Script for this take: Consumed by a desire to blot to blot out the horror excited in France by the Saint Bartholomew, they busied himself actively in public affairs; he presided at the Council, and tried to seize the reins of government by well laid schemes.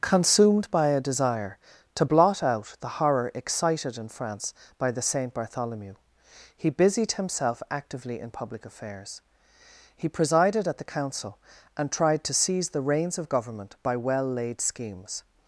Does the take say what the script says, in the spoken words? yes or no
no